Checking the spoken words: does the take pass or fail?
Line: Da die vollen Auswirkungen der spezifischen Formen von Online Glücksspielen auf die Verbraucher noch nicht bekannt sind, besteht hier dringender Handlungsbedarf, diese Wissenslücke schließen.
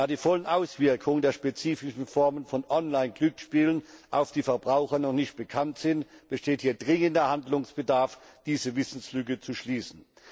fail